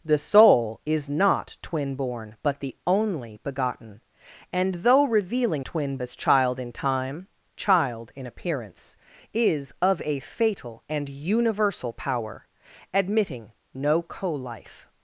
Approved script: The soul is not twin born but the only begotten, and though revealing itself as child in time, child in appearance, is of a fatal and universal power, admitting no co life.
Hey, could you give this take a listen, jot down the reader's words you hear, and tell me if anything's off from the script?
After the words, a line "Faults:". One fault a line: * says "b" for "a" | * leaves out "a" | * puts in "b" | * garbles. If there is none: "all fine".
The soul is not twin born but the only begotten, and though revealing twin as child in time, child in appearance, is of a fatal and universal power, admitting no co life.
Faults:
* says "twin" for "itself"